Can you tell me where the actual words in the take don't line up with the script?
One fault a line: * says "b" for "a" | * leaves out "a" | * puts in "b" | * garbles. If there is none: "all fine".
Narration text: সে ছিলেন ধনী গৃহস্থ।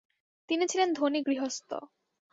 * says "তিনি" for "সে"